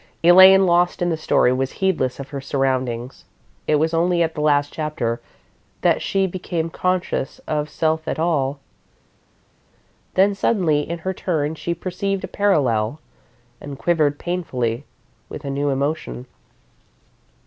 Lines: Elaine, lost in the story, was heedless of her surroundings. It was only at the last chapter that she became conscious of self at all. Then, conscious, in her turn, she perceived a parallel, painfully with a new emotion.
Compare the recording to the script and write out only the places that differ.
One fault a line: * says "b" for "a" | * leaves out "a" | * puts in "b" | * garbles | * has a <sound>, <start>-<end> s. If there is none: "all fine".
* says "suddenly" for "conscious"
* puts in "and quivered"